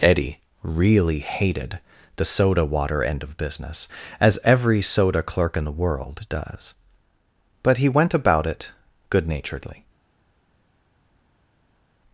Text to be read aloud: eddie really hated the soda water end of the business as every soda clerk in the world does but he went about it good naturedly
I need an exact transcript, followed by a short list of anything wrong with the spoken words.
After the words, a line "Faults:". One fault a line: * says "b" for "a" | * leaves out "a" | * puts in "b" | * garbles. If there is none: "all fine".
eddie really hated the soda water end of business as every soda clerk in the world does but he went about it good naturedly
Faults:
* leaves out "the"